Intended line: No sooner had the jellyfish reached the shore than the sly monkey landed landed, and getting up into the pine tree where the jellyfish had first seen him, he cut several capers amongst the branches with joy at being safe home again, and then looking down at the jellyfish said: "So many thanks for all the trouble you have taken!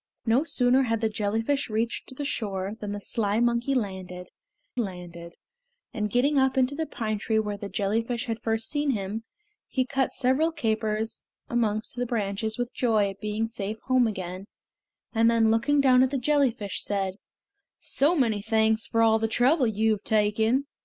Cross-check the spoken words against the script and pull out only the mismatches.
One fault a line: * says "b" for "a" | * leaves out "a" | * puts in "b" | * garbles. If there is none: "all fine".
all fine